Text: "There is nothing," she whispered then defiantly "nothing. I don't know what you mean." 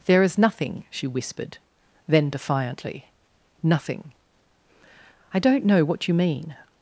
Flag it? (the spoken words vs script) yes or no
no